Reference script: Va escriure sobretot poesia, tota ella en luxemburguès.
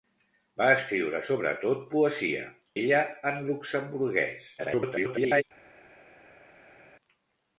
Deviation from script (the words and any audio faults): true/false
true